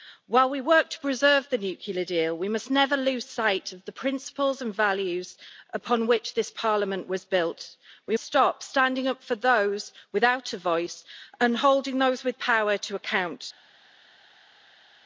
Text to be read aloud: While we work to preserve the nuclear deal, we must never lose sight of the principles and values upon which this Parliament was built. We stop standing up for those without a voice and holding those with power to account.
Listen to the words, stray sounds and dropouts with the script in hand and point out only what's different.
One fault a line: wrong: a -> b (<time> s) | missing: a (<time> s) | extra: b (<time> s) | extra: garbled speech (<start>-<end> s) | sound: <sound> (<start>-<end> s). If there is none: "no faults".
no faults